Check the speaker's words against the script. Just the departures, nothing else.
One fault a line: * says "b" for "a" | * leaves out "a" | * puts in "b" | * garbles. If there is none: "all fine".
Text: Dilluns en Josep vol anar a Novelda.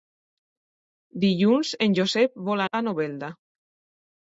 * leaves out "anar"